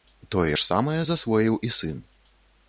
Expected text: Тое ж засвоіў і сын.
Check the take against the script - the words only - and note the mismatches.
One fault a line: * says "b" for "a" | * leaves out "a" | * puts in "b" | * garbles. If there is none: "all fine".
* puts in "самае"